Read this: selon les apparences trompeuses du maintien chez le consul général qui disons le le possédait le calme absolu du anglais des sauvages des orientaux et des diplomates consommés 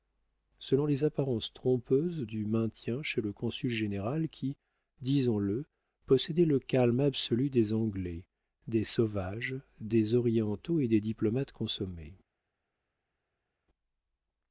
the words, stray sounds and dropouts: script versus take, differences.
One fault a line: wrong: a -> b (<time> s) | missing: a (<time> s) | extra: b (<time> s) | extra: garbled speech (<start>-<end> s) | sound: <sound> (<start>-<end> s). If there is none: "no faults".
missing: le (5.6 s)
wrong: du -> des (7.5 s)